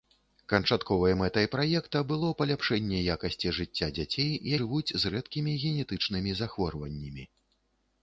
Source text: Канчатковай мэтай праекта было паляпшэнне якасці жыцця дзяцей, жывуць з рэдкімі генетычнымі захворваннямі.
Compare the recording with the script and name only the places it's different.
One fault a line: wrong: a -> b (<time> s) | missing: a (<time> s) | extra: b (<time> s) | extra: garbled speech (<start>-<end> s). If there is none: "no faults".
no faults